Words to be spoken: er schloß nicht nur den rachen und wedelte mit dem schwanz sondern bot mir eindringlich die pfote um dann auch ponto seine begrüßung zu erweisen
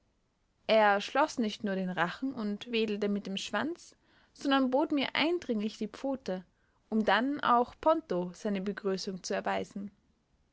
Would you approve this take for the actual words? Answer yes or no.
yes